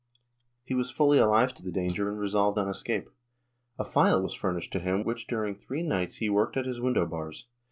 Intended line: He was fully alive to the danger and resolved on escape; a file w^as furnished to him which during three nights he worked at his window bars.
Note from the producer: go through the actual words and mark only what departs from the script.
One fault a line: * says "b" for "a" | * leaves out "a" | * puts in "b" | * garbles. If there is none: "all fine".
all fine